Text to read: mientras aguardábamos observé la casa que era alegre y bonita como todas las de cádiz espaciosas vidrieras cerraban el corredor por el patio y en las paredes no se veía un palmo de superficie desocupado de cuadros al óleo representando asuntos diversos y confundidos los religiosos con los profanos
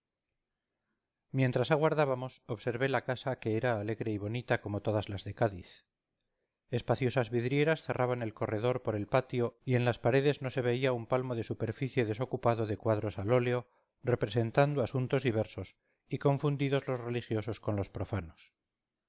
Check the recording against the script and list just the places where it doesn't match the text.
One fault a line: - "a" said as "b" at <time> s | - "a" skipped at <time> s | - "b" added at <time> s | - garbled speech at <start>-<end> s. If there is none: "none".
none